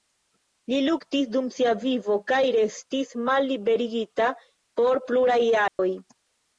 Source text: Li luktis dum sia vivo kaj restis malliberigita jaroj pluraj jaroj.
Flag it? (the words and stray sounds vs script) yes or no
yes